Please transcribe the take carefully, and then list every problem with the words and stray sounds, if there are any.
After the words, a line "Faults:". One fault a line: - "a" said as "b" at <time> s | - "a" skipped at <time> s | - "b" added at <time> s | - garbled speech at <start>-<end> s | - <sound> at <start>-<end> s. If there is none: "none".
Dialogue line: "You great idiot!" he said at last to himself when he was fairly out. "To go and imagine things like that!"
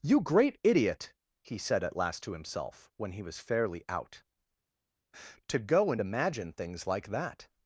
"You great idiot!" he said at last to himself when he was fairly out. "To go and imagine things like that!"
Faults:
none